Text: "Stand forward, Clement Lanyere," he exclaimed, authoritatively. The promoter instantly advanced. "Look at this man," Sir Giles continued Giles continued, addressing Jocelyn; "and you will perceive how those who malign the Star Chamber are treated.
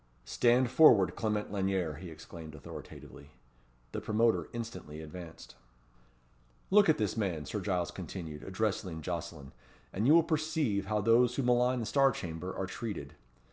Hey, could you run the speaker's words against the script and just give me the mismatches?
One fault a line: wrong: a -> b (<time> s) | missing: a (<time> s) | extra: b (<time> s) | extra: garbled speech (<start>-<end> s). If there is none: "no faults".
missing: Giles continued (8.4 s)